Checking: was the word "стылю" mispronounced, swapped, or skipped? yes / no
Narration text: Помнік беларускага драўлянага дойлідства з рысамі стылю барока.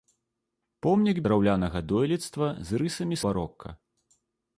yes